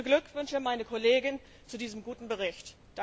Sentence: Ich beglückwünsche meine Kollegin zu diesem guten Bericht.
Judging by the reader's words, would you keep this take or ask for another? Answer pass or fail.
pass